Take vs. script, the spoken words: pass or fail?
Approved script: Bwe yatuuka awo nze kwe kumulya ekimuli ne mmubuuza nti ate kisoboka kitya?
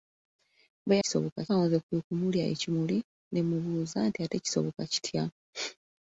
fail